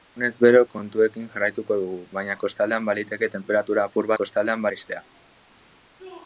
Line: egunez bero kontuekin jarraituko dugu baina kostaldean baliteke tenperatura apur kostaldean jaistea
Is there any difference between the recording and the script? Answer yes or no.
no